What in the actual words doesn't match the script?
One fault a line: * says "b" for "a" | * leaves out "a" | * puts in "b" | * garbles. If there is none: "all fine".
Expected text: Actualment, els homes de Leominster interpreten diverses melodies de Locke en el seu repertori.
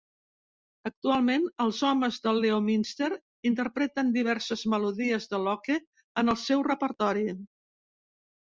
all fine